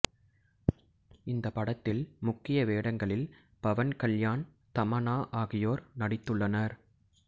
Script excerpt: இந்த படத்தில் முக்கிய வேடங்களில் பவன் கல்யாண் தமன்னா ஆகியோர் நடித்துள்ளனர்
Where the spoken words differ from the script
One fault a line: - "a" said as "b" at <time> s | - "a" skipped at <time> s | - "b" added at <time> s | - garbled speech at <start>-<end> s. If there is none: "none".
none